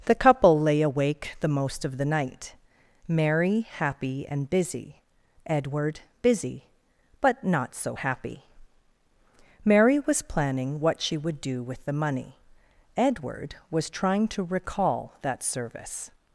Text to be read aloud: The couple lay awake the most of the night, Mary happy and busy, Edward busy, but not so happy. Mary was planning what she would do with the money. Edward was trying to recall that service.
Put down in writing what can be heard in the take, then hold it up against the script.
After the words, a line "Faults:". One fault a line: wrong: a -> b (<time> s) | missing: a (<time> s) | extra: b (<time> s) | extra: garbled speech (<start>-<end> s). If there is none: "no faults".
The couple lay awake the most of the night, Mary happy and busy, Edward busy, but not so happy. Mary was planning what she would do with the money. Edward was trying to recall that service.
Faults:
no faults